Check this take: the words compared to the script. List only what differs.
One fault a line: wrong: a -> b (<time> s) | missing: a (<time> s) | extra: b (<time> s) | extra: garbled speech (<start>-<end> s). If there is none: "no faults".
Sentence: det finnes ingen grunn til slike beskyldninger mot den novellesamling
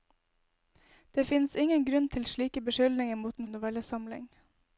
no faults